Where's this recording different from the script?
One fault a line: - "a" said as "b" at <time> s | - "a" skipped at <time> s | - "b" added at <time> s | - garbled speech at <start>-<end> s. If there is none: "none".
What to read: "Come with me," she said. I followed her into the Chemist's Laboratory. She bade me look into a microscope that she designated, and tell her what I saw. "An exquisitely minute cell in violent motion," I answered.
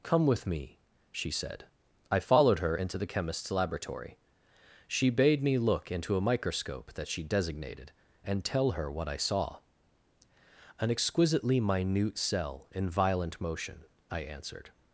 none